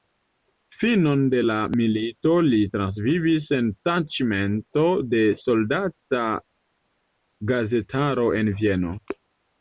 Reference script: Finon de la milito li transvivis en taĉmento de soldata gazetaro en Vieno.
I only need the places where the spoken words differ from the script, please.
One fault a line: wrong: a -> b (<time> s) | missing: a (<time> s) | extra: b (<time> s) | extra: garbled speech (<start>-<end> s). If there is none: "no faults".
no faults